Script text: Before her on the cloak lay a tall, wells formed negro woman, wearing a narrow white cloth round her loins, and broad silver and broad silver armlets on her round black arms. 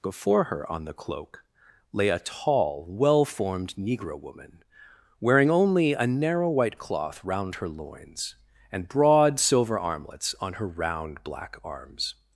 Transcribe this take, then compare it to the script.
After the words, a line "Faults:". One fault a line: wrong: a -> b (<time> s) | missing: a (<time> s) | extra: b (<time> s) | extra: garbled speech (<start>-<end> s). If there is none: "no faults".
Before her on the cloak lay a tall, well formed negro woman, wearing only a narrow white cloth round her loins, and broad silver armlets on her round black arms.
Faults:
wrong: wells -> well (2.9 s)
extra: only (5.5 s)
missing: and broad silver (9.8 s)